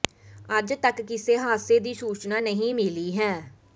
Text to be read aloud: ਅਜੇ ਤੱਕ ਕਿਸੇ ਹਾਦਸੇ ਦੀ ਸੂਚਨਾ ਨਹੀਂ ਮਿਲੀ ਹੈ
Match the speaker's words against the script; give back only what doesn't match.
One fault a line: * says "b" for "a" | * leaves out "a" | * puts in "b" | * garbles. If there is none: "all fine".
all fine